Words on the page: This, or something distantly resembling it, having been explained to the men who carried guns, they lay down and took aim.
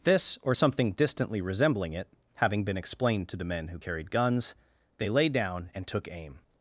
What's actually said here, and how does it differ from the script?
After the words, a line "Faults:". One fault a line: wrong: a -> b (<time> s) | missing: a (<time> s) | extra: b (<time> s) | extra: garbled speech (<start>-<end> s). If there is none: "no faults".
This, or something distantly resembling it, having been explained to the men who carried guns, they lay down and took aim.
Faults:
no faults